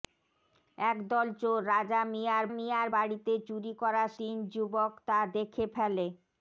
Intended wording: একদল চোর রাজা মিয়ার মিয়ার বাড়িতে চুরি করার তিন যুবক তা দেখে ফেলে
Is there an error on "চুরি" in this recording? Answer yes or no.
no